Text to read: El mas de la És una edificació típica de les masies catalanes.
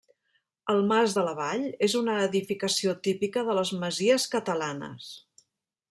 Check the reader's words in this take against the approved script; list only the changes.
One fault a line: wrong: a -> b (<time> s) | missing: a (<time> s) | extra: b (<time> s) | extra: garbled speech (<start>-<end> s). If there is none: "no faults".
extra: Vall (1.4 s)